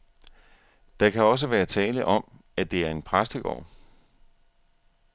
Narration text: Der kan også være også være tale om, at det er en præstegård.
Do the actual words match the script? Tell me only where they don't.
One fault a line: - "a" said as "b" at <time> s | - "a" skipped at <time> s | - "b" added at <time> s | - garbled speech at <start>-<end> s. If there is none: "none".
- "også være" skipped at 1.6 s